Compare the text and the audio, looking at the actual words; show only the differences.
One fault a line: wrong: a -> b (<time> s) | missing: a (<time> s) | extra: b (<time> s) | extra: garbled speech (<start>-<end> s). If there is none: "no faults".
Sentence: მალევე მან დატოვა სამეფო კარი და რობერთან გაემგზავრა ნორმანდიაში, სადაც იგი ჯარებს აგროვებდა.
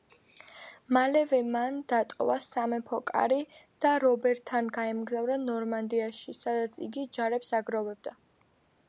no faults